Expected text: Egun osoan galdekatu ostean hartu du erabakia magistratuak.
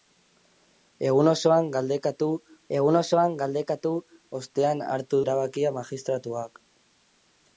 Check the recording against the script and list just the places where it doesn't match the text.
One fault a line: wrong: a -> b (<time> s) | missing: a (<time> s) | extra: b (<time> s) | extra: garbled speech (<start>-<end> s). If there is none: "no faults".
extra: egun osoan galdekatu (2.8 s)
missing: du (5.2 s)